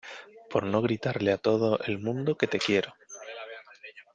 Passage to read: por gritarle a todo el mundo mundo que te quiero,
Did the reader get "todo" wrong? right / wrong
right